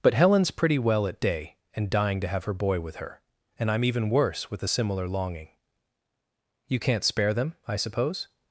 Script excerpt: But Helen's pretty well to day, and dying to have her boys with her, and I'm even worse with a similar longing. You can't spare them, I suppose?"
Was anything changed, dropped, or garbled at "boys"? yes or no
yes